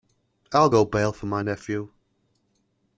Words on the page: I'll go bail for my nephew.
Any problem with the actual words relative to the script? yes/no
no